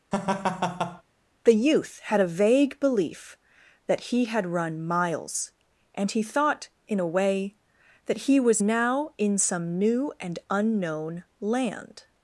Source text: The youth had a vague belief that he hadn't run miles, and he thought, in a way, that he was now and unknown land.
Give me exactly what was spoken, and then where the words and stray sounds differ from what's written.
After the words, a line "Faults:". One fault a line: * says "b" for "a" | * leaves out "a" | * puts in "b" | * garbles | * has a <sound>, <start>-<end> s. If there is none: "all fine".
The youth had a vague belief that he had run miles, and he thought, in a way, that he was now in some new and unknown land.
Faults:
* has a laugh, 0.1-1.0 s
* says "had" for "hadn't"
* puts in "in some new"